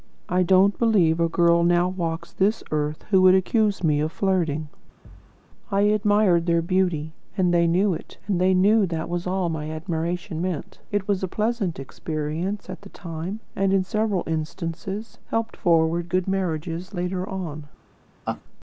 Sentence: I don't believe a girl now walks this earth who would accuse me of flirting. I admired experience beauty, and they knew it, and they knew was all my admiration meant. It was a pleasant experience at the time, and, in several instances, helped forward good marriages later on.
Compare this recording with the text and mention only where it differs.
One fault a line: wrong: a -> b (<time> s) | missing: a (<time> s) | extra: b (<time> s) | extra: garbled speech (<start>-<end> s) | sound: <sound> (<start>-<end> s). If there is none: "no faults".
sound: thud (5.0-5.4 s)
wrong: experience -> their (6.5 s)
extra: that (8.9 s)
sound: laugh (18.3-18.4 s)